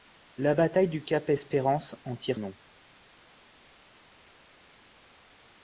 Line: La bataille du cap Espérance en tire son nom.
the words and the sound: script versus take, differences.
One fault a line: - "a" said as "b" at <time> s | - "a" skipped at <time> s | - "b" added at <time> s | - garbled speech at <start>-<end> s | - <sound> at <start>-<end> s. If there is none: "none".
- "son" skipped at 2.4 s